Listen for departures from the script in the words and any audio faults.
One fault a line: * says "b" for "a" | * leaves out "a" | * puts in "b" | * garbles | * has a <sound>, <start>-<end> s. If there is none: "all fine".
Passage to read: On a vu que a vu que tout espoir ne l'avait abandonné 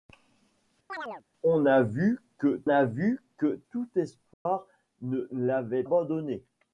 * has a chirp, 0.9-1.2 s
* has a dropout, 4.3-4.5 s